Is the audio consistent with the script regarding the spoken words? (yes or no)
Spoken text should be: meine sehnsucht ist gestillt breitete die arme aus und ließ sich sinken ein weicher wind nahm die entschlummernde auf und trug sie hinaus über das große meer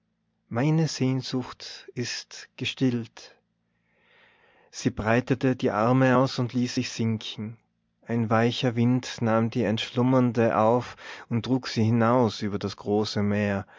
no